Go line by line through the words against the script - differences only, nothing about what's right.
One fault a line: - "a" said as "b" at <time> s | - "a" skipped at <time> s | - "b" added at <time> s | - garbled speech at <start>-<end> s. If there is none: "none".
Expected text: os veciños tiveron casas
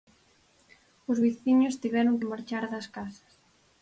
- "que marchar das" added at 2.2 s